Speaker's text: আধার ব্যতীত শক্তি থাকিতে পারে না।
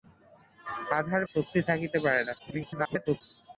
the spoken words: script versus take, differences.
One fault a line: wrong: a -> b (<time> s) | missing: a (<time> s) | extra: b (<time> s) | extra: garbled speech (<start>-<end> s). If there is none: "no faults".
missing: ব্যতীত (1.2 s)
extra: garbled speech (2.4-3.2 s)